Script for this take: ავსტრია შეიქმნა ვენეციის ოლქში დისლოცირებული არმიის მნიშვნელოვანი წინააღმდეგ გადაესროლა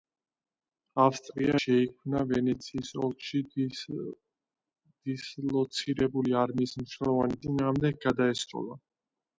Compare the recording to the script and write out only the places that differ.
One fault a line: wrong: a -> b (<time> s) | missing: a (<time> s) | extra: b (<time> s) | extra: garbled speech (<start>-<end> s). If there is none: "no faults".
no faults